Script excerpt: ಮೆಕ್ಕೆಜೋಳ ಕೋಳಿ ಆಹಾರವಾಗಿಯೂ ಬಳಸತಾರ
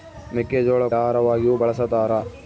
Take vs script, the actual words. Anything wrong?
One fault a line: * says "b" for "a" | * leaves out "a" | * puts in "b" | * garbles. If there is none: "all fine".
* leaves out "ಕೋಳಿ"